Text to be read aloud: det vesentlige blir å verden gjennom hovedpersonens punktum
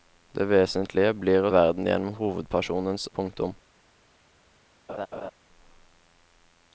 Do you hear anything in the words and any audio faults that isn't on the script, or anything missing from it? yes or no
yes